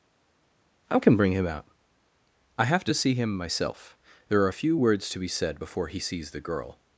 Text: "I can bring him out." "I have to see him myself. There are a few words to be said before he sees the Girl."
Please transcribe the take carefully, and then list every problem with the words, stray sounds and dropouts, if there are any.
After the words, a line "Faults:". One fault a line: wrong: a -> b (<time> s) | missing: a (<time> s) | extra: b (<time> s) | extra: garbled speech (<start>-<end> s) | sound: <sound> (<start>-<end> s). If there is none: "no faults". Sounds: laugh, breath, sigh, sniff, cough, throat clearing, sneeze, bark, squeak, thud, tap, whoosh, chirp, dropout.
"I can bring him out." "I have to see him myself. There are a few words to be said before he sees the Girl."
Faults:
no faults